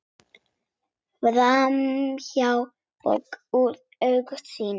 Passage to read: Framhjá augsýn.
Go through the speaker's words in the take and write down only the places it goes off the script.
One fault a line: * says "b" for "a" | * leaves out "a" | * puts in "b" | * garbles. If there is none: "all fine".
* puts in "og úr"